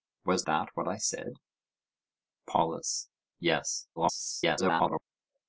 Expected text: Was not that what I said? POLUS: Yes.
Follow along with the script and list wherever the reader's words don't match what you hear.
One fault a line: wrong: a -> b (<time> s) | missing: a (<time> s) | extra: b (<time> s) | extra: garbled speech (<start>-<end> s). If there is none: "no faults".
missing: not (0.5 s)
extra: garbled speech (4.0-5.0 s)